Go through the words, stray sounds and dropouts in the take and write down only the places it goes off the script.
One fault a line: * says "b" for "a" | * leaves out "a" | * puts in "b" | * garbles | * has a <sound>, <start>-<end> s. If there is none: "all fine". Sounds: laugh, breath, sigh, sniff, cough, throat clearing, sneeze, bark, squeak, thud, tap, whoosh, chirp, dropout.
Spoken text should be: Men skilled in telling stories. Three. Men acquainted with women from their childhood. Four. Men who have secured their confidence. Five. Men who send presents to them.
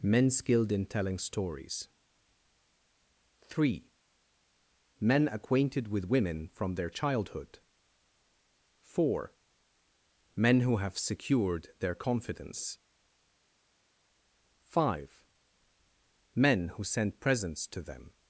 all fine